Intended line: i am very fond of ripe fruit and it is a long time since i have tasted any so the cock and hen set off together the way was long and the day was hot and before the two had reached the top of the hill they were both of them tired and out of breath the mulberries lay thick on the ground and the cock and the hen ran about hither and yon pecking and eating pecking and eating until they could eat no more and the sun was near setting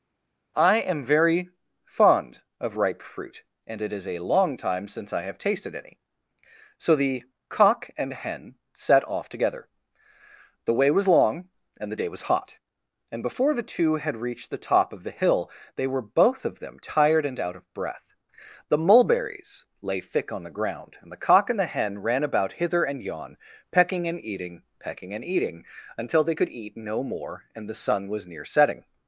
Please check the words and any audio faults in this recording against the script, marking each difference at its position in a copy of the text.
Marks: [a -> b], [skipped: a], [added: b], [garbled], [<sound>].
i am very fond of ripe fruit and it is a long time since i have tasted any so the cock and hen set off together the way was long and the day was hot and before the two had reached the top of the hill they were both of them tired and out of breath the mulberries lay thick on the ground and the cock and the hen ran about hither and yon pecking and eating pecking and eating until they could eat no more and the sun was near setting